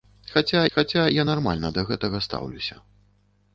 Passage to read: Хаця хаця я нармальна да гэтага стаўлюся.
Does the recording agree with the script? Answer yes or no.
yes